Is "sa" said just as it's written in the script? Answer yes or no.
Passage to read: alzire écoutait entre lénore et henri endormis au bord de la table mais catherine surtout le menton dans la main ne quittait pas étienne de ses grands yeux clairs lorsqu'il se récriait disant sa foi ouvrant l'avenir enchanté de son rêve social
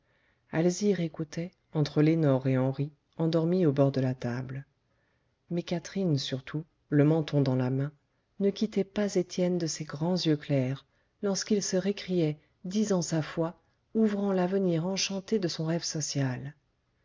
yes